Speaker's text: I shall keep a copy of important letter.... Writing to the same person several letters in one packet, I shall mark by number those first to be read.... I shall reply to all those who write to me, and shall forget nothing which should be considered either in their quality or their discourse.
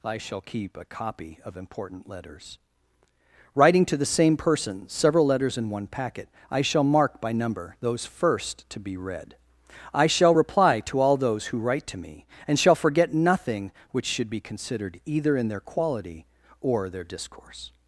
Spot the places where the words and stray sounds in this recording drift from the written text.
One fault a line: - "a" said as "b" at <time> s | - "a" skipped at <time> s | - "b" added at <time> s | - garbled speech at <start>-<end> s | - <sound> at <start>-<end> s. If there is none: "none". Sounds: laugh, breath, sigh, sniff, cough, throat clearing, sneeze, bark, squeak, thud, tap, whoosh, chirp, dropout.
- "letter" said as "letters" at 2.1 s